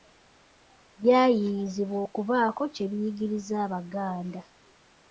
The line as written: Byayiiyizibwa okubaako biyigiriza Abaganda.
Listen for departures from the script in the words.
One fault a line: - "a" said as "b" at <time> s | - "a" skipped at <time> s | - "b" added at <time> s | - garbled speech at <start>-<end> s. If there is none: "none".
- "kye" added at 2.7 s